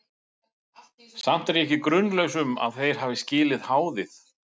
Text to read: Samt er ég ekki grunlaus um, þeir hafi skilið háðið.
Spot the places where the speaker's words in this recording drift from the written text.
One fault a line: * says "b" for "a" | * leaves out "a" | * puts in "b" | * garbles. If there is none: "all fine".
* puts in "að"